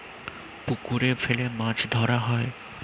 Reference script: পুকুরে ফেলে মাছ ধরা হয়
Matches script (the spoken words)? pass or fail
pass